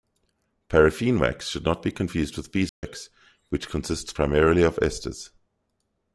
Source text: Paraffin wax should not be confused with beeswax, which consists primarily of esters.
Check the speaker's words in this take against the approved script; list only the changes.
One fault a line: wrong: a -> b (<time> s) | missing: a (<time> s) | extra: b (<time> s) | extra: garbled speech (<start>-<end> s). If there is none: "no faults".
no faults